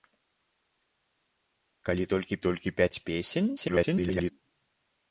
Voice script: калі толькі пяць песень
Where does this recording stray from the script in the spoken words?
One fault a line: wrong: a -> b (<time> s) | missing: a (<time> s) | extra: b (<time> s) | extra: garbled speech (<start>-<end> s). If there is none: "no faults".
extra: толькі (2.5 s)
extra: garbled speech (3.6-4.3 s)